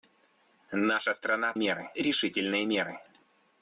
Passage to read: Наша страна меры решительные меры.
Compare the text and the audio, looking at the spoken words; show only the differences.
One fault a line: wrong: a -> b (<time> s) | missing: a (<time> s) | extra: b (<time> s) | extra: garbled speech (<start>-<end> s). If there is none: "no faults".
no faults